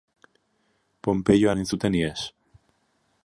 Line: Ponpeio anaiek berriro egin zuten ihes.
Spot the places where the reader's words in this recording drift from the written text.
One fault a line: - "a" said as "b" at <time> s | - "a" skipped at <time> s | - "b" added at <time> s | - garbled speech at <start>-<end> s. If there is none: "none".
- "anaiek berriro" skipped at 1.5 s